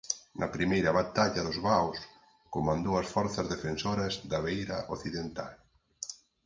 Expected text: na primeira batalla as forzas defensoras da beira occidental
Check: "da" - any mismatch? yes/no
no